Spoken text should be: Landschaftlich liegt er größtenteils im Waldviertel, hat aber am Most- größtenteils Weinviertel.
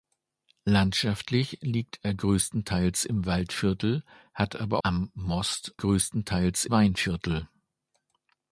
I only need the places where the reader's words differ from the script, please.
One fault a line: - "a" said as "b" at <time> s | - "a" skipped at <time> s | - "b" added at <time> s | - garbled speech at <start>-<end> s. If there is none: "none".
none